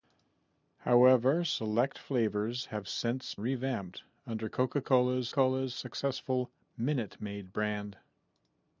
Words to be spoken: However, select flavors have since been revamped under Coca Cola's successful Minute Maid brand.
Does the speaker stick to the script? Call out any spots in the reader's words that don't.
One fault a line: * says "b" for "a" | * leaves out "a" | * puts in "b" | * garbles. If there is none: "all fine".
* leaves out "been"
* puts in "Cola's"